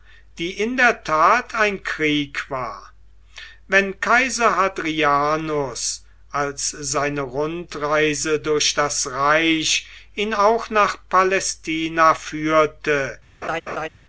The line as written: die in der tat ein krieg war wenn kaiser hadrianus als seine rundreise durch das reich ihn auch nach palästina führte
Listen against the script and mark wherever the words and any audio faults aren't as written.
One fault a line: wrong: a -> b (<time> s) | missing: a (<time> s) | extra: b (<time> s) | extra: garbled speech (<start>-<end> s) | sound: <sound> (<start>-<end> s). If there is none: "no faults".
sound: laugh (13.4-13.9 s)